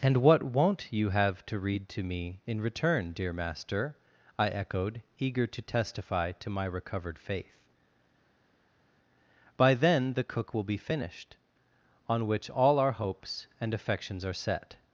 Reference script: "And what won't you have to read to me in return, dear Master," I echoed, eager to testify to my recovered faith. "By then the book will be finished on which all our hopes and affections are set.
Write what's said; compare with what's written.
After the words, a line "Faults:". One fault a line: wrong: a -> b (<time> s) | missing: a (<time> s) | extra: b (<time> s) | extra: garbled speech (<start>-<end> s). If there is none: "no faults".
"And what won't you have to read to me in return, dear Master," I echoed, eager to testify to my recovered faith. "By then the cook will be finished on which all our hopes and affections are set.
Faults:
wrong: book -> cook (10.2 s)